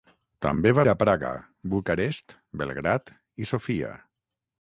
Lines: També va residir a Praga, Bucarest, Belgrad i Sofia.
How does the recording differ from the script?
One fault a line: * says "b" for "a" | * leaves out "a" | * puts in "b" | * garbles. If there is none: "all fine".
* leaves out "residir"